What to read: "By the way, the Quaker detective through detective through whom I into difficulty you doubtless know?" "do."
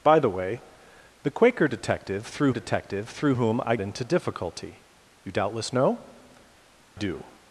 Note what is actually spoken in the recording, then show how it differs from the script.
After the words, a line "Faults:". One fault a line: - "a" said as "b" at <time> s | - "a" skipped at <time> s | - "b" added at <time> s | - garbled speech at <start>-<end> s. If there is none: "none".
"By the way, the Quaker detective through detective through whom I into difficulty you doubtless know?" "do."
Faults:
none